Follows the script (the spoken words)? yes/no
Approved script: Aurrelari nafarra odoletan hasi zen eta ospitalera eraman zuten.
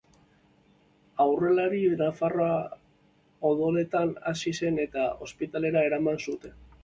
yes